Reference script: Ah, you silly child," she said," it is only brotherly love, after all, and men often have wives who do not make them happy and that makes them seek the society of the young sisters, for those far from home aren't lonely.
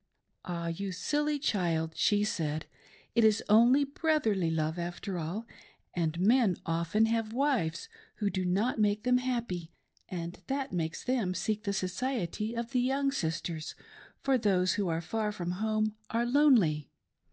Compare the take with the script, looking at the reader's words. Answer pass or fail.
fail